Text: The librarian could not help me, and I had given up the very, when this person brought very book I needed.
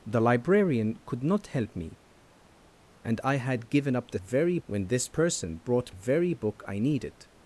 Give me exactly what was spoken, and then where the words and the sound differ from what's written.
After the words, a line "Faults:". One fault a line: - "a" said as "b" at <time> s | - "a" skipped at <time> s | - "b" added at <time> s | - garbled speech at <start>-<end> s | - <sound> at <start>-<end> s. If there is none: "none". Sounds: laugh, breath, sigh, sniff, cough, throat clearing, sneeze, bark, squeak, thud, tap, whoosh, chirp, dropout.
The librarian could not help me, and I had given up the very, when this person brought very book I needed.
Faults:
none